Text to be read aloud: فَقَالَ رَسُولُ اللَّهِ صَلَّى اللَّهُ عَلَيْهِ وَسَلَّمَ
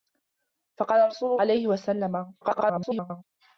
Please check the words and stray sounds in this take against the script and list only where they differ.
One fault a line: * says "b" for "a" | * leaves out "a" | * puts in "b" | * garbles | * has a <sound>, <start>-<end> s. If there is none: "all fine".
* leaves out "اللَّهِ صَلَّى اللَّهُ"
* garbles